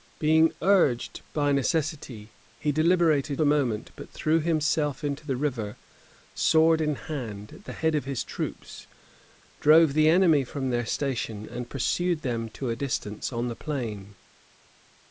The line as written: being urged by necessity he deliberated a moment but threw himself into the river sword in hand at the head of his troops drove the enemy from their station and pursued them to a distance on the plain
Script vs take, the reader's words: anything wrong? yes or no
no